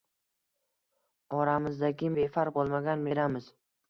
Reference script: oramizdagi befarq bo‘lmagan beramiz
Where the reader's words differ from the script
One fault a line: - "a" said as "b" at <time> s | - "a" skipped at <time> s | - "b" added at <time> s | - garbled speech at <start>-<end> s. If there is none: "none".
none